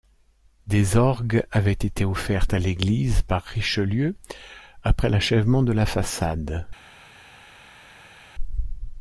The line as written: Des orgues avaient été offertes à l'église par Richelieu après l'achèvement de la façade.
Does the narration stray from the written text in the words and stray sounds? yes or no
no